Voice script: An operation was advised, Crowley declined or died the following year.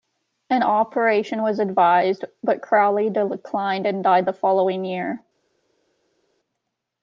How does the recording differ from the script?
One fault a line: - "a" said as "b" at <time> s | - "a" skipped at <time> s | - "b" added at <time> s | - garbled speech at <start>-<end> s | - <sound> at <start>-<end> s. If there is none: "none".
- "but" added at 2.4 s
- "or" said as "and" at 3.9 s